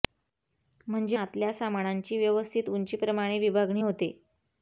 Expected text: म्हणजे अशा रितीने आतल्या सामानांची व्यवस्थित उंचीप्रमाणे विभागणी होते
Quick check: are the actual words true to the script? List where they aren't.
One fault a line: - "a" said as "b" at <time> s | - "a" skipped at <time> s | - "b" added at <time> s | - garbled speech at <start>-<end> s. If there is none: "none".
- "अशा रितीने" skipped at 1.2 s